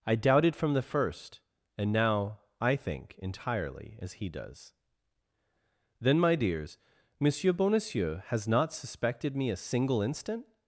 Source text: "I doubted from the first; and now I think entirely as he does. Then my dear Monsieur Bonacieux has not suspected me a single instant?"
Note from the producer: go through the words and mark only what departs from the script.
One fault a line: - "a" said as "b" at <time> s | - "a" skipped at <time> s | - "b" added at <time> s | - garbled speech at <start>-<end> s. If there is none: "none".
- "dear" said as "dears" at 6.3 s